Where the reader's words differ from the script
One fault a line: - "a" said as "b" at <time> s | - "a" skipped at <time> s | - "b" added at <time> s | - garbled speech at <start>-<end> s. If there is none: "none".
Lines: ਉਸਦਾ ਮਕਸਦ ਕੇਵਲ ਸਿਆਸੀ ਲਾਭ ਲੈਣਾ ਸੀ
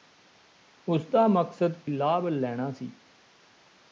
- "ਕੇਵਲ ਸਿਆਸੀ" skipped at 1.7 s